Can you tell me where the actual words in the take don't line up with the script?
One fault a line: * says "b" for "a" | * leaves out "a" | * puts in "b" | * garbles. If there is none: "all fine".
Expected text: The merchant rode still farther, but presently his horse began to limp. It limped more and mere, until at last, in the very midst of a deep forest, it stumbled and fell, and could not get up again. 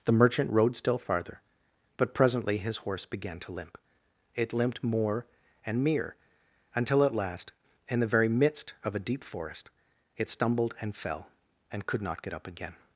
all fine